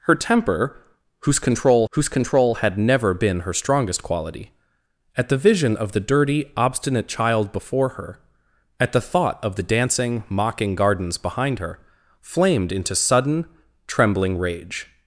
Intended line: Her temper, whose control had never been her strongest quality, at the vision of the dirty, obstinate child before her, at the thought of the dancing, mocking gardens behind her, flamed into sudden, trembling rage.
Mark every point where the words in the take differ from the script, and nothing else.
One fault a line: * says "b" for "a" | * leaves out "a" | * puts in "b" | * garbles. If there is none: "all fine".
* puts in "whose control"